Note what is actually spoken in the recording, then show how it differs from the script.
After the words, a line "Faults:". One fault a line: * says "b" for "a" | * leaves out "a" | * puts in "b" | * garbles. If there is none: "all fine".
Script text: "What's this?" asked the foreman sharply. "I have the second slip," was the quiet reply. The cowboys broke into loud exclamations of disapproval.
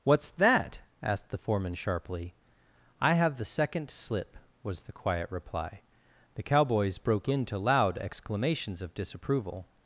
"What's that?" asked the foreman sharply. "I have the second slip," was the quiet reply. The cowboys broke into loud exclamations of disapproval.
Faults:
* says "that" for "this"